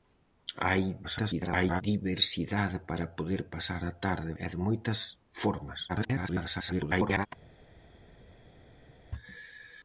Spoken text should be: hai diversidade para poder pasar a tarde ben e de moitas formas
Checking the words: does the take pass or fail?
fail